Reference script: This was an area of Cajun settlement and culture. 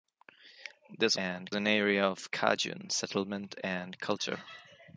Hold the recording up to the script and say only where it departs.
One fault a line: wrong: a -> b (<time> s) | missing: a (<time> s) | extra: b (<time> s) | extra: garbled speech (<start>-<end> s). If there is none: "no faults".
wrong: was -> and (1.2 s)